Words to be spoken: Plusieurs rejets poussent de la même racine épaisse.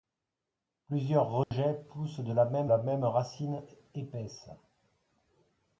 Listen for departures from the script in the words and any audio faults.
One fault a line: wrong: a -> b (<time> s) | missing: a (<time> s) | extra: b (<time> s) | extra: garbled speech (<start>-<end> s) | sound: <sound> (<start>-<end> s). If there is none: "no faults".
sound: dropout (1.4-1.5 s)
extra: la même (2.7 s)